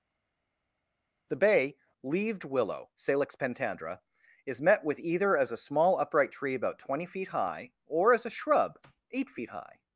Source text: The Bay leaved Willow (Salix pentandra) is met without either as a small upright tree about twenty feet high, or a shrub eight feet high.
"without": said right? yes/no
no